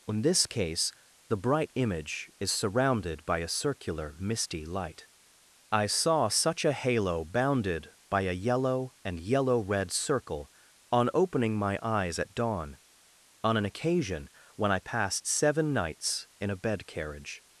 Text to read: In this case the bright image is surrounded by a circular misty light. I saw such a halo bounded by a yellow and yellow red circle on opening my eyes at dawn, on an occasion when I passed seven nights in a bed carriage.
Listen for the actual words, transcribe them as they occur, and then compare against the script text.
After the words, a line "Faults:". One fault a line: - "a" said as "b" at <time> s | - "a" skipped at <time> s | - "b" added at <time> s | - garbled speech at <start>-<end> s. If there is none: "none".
In this case the bright image is surrounded by a circular misty light. I saw such a halo bounded by a yellow and yellow red circle on opening my eyes at dawn, on an occasion when I passed seven nights in a bed carriage.
Faults:
none